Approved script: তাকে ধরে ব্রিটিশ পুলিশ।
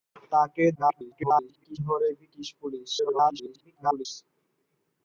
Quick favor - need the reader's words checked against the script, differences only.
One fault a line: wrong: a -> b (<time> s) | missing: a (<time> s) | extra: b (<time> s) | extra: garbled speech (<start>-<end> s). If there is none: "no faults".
extra: garbled speech (0.7-1.8 s)
extra: garbled speech (3.0-4.1 s)